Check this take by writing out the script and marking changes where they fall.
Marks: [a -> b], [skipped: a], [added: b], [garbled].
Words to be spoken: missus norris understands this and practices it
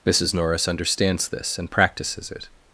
missus norris understands this and practices it